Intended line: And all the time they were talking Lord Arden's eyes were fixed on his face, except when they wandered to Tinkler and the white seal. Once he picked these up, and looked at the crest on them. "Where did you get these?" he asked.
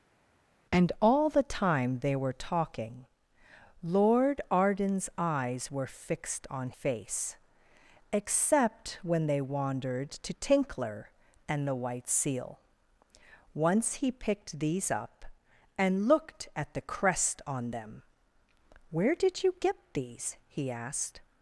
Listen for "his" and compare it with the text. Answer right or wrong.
wrong